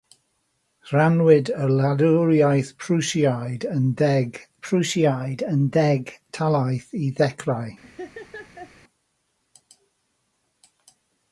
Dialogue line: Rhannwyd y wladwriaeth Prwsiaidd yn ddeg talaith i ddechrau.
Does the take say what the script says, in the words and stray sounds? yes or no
no